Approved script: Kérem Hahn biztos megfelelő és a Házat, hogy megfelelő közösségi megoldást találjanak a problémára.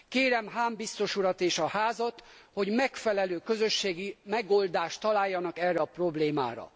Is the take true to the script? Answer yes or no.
no